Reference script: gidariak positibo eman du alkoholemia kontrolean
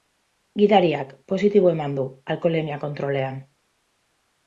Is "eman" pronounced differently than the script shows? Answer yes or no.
no